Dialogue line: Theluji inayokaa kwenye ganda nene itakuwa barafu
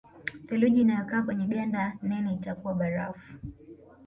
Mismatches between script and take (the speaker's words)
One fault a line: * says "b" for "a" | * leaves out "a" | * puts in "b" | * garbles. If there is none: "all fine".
all fine